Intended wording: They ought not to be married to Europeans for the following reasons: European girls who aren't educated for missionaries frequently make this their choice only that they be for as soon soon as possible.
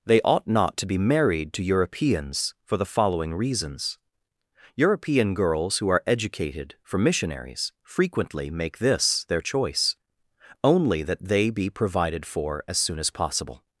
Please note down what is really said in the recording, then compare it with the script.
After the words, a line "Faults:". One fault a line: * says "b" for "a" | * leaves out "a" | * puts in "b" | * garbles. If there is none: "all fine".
They ought not to be married to Europeans for the following reasons: European girls who are educated for missionaries frequently make this their choice only that they be provided for as soon as possible.
Faults:
* says "are" for "aren't"
* puts in "provided"
* leaves out "soon"